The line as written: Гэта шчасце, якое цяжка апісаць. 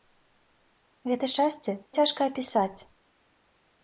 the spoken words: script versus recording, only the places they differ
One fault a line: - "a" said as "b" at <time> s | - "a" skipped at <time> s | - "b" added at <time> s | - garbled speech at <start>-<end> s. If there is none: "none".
- "якое" skipped at 1.7 s